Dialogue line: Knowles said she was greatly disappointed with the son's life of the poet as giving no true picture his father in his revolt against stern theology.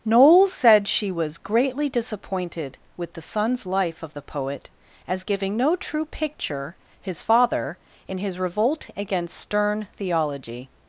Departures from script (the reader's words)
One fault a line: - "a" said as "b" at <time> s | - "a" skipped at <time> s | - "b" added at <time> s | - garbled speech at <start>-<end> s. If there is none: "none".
none